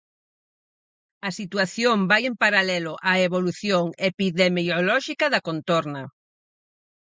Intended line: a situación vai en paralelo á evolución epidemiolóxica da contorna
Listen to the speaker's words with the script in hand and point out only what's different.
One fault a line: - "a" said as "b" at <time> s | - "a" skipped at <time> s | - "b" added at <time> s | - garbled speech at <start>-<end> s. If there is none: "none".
none